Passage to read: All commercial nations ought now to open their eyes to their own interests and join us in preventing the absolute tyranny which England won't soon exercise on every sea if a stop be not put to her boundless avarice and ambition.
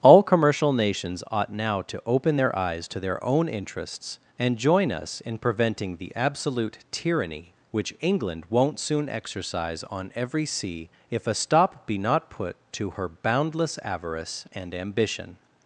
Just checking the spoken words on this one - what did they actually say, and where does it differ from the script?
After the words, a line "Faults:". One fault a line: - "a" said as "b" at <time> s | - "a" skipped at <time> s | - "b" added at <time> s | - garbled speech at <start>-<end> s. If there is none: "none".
All commercial nations ought now to open their eyes to their own interests and join us in preventing the absolute tyranny which England won't soon exercise on every sea if a stop be not put to her boundless avarice and ambition.
Faults:
none